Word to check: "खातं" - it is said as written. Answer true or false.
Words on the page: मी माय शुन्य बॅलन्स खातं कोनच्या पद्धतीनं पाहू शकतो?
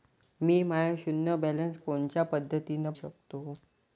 false